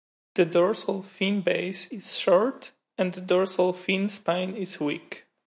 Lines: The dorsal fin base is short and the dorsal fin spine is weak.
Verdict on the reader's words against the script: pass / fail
pass